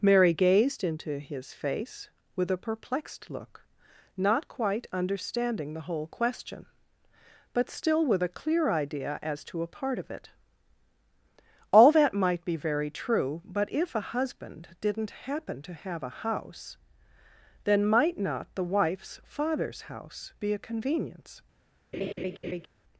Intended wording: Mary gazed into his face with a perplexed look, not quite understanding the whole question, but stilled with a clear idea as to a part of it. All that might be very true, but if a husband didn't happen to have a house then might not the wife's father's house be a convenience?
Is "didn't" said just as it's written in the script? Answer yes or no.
yes